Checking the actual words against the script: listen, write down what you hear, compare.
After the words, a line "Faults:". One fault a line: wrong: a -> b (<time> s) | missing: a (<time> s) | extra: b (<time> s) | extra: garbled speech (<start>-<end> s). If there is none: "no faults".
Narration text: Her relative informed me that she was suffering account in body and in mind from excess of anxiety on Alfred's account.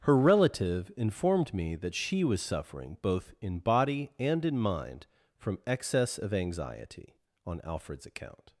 Her relative informed me that she was suffering both in body and in mind from excess of anxiety on Alfred's account.
Faults:
wrong: account -> both (3.0 s)